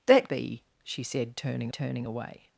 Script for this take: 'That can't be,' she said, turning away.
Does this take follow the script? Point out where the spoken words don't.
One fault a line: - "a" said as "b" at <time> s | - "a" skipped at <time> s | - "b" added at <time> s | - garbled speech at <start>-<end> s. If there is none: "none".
- "can't" skipped at 0.3 s
- "turning" added at 1.7 s